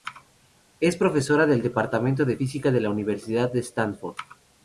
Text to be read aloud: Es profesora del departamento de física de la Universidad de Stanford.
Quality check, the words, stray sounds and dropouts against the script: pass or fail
pass